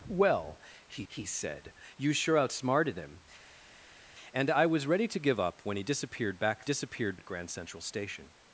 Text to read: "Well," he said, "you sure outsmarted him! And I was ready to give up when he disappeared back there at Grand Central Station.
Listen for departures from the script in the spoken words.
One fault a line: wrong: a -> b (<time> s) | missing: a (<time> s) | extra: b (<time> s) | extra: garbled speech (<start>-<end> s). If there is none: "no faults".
extra: he (1.1 s)
wrong: there -> disappeared (6.6 s)